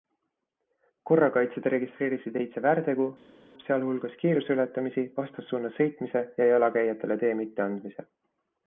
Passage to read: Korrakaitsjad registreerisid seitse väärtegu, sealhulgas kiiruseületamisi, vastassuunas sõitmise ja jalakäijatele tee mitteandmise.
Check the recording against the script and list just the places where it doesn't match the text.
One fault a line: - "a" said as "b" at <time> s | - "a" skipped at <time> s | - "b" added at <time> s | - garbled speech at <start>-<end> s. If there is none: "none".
none